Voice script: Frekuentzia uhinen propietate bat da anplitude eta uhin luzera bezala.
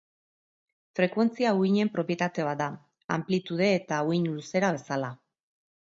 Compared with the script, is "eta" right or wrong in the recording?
right